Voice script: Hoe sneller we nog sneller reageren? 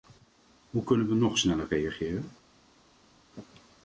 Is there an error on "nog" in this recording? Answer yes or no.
no